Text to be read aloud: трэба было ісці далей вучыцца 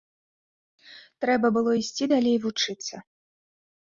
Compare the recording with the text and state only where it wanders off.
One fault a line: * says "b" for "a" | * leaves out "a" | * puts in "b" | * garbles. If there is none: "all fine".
all fine